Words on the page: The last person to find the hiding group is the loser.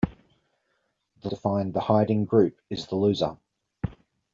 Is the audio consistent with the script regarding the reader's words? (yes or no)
no